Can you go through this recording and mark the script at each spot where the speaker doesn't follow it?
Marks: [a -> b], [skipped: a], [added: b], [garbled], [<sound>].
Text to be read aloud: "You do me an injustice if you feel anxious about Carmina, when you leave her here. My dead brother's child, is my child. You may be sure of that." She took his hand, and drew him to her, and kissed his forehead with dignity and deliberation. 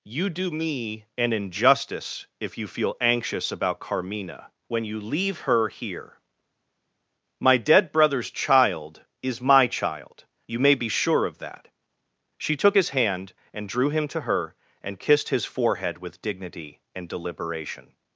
"You do me an injustice if you feel anxious about Carmina, when you leave her here. My dead brother's child, is my child. You may be sure of that." She took his hand, and drew him to her, and kissed his forehead with dignity and deliberation.